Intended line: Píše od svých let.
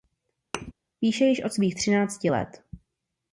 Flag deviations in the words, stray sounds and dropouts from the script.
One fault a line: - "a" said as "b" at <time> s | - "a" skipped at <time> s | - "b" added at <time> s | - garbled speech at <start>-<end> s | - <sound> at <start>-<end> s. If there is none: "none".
- thud at 0.5-0.7 s
- "již" added at 1.2 s
- "třinácti" added at 1.7 s